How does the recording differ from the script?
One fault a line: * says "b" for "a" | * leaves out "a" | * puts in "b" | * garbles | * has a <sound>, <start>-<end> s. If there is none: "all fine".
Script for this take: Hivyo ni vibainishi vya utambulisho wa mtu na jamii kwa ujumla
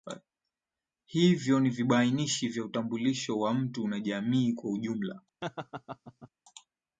* has a laugh, 5.4-6.3 s